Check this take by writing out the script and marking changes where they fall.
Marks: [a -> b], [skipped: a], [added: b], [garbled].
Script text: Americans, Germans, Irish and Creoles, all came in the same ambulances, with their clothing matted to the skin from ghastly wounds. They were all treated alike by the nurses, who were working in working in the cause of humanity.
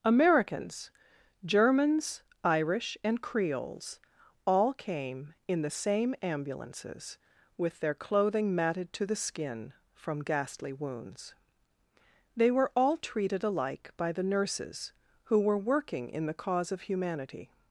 Americans, Germans, Irish and Creoles, all came in the same ambulances, with their clothing matted to the skin from ghastly wounds. They were all treated alike by the nurses, who were working in [skipped: working in] the cause of humanity.